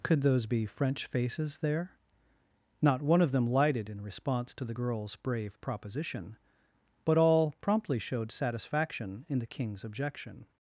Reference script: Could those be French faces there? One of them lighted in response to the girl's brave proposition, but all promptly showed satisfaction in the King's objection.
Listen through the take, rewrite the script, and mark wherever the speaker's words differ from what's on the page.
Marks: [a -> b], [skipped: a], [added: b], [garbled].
Could those be French faces there? [added: Not] One of them lighted in response to the girl's brave proposition, but all promptly showed satisfaction in the King's objection.